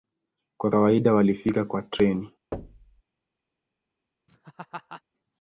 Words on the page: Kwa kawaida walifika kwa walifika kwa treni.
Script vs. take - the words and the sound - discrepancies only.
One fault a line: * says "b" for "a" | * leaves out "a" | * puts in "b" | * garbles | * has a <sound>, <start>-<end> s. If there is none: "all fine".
* leaves out "walifika kwa"
* has a thud, 2.5-3.0 s
* has a laugh, 4.3-5.0 s